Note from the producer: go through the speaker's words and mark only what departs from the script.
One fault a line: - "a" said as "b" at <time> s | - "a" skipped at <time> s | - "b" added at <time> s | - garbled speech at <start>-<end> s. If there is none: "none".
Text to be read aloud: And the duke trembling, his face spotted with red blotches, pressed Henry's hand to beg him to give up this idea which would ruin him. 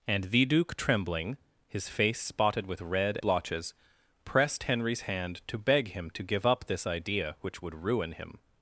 none